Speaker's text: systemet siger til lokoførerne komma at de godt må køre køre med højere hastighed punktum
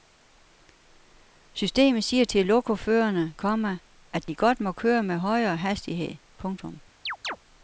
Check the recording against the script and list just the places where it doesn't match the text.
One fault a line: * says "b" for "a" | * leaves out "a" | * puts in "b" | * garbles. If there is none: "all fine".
* leaves out "køre"